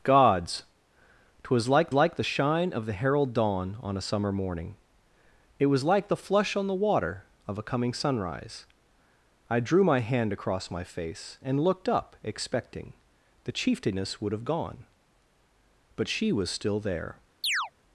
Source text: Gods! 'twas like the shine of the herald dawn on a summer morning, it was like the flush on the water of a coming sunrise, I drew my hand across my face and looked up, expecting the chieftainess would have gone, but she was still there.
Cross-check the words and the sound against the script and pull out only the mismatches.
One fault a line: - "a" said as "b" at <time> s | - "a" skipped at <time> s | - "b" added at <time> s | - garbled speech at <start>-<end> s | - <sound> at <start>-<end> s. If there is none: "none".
- "like" added at 1.9 s
- chirp at 17.4-17.7 s